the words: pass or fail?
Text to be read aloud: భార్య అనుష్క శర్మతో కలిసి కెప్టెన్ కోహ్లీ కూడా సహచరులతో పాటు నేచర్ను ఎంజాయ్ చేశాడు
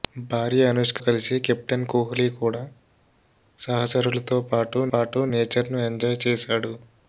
fail